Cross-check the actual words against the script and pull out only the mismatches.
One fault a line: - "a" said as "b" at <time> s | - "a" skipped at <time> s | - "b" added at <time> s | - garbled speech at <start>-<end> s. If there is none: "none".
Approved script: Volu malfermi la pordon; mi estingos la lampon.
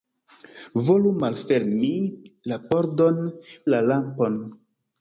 - "mi estingos" skipped at 3.2 s